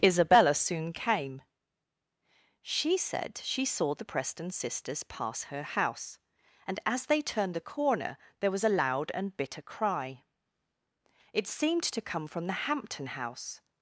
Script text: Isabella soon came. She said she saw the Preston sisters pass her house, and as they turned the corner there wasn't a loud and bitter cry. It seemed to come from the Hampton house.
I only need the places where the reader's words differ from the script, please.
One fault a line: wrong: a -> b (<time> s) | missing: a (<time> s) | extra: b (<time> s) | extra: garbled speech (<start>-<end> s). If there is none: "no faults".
wrong: wasn't -> was (8.5 s)